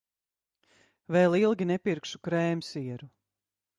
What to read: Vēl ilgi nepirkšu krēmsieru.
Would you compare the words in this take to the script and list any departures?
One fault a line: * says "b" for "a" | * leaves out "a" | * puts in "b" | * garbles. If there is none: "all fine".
all fine